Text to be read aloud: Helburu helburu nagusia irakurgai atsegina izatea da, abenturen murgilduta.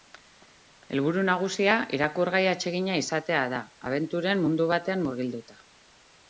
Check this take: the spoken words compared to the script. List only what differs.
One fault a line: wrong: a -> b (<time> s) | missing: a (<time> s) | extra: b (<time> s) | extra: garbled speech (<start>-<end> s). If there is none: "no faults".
missing: helburu (1.2 s)
extra: mundu batean (4.5 s)